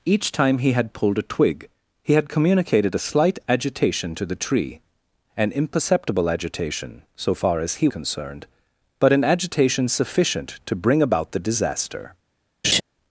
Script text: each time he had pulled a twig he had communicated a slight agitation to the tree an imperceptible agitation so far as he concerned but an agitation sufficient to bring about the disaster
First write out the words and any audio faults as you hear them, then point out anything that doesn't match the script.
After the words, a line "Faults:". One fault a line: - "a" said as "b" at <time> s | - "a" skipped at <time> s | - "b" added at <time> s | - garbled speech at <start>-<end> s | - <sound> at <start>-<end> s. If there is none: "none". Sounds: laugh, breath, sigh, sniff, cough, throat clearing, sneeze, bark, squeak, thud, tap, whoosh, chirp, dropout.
each time he had pulled a twig he had communicated a slight agitation to the tree an imperceptible agitation so far as he concerned but an agitation sufficient to bring about the disaster
Faults:
- laugh at 12.6-12.8 s